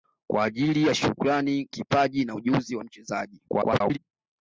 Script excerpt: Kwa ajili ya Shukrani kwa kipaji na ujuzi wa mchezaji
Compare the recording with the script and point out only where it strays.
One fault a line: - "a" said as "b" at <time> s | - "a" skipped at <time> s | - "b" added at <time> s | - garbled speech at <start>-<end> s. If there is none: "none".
- "kwa" skipped at 1.7 s
- garbled speech at 3.5-4.0 s